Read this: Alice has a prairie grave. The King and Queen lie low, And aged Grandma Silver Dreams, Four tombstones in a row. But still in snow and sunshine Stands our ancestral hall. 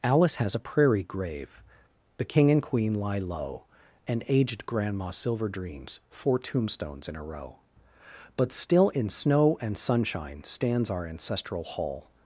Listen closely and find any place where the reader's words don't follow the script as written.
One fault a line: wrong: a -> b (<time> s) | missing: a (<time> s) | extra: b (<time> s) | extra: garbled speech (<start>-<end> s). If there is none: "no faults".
no faults